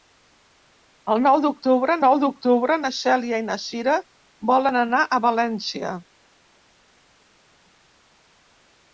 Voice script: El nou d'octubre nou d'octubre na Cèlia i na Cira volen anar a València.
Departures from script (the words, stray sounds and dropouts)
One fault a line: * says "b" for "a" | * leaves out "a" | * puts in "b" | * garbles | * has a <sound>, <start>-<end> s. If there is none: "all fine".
all fine